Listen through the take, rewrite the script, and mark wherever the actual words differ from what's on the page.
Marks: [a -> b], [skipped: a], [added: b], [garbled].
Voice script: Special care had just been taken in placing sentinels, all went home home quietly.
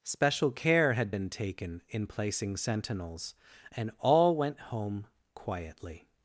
Special care had [skipped: just] been taken in placing sentinels, [added: and] all went home [skipped: home] quietly.